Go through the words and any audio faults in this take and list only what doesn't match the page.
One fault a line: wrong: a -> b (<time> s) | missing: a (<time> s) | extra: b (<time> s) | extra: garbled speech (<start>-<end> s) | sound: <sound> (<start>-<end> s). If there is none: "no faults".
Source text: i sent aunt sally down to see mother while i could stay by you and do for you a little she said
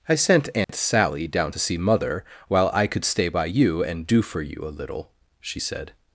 sound: dropout (0.6-0.7 s)